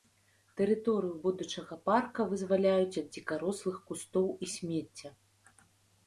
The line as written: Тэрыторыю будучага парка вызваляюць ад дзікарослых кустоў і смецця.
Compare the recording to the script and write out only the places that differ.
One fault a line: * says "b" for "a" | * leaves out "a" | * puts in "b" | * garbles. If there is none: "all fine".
all fine